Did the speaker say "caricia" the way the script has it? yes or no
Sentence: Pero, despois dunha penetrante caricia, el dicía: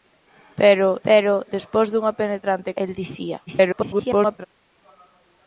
no